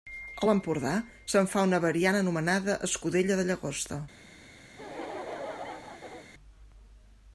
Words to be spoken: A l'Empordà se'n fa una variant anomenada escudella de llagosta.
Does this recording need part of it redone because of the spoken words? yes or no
no